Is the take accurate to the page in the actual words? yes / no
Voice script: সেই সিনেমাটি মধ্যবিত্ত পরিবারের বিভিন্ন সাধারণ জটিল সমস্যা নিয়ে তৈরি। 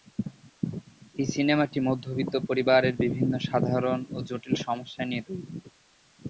no